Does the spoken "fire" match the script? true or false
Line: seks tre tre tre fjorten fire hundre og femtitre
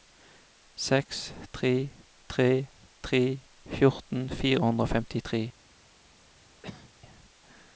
true